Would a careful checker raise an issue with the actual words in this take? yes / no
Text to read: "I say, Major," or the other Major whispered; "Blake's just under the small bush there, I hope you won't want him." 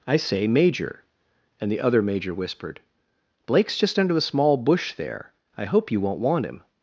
yes